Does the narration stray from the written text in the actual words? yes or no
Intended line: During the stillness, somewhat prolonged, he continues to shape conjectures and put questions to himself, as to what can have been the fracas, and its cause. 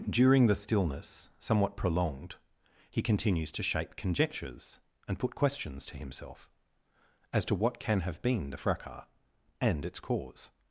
no